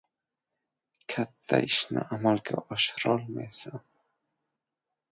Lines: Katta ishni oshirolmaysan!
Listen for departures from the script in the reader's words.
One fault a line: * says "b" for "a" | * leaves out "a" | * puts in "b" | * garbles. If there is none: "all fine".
* puts in "amalga"